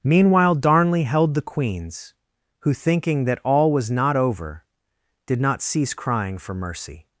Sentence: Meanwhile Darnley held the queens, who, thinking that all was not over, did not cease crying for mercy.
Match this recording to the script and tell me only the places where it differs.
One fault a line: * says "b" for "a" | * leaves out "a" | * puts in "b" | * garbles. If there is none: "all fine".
all fine